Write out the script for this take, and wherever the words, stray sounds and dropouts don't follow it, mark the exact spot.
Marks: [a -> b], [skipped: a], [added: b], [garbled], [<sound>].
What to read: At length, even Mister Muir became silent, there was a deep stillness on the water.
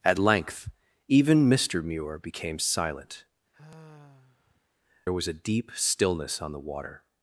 At length, even Mister Muir became silent, [sigh] there was a deep stillness on the water.